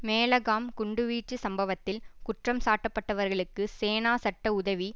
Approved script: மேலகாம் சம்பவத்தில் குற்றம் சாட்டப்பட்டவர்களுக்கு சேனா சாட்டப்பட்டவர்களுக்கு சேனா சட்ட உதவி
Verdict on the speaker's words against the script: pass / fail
fail